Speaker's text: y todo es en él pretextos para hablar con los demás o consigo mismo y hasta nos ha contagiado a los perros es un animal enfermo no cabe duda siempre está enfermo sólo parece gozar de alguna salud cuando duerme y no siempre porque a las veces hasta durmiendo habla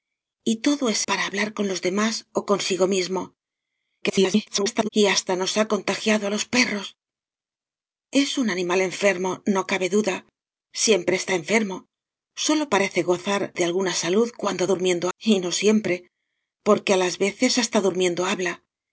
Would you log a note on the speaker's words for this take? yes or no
yes